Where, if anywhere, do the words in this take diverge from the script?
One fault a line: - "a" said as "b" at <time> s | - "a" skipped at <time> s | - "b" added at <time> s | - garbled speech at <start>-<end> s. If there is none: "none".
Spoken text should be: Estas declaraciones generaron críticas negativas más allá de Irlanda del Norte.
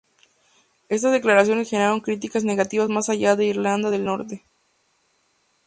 none